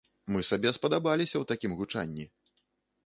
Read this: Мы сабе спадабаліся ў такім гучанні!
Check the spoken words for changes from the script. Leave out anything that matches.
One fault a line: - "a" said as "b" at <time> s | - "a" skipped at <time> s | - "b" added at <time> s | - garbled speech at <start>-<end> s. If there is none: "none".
none